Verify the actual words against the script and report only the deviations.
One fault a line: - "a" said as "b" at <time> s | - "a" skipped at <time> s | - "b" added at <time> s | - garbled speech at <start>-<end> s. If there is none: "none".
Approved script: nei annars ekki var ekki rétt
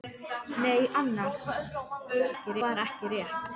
none